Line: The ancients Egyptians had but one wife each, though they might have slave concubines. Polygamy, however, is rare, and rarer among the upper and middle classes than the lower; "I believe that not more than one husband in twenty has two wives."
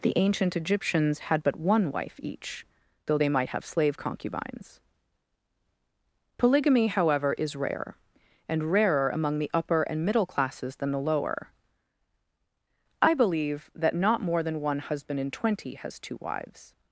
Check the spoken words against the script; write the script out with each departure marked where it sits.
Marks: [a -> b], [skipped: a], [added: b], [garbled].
The [ancients -> ancient] Egyptians had but one wife each, though they might have slave concubines. Polygamy, however, is rare, and rarer among the upper and middle classes than the lower; "I believe that not more than one husband in twenty has two wives."